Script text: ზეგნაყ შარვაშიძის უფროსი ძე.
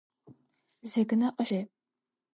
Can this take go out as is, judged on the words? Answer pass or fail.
fail